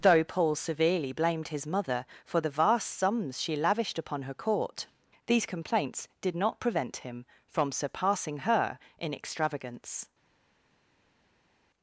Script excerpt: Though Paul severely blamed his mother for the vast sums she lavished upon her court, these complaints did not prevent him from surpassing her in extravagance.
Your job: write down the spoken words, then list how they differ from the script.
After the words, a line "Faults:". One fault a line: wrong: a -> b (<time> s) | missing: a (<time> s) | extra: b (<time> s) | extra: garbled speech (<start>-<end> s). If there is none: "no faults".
Though Paul severely blamed his mother for the vast sums she lavished upon her court, these complaints did not prevent him from surpassing her in extravagance.
Faults:
no faults